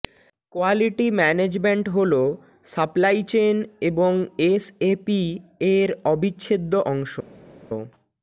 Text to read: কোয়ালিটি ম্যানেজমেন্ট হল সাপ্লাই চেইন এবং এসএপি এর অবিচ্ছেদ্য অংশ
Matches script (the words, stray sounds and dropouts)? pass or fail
pass